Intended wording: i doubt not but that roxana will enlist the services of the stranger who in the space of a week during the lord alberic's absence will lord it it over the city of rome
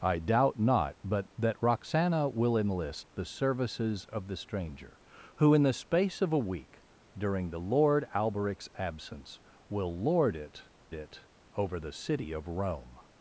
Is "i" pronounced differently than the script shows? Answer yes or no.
no